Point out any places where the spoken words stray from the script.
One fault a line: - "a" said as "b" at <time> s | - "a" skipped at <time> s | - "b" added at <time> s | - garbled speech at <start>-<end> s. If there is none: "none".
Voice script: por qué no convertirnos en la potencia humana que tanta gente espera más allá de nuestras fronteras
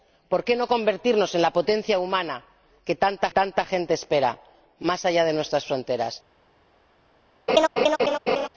- "tanta" added at 3.3 s